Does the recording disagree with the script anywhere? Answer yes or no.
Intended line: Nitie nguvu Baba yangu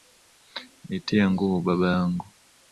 no